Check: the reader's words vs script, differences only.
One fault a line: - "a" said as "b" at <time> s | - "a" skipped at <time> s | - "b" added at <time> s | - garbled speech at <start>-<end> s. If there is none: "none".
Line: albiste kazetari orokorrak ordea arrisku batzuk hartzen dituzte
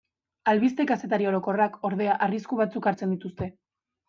none